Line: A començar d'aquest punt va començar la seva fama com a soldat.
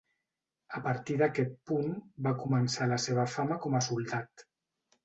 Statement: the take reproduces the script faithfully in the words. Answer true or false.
false